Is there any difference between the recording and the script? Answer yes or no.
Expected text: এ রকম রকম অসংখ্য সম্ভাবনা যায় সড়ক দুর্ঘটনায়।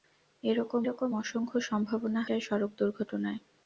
no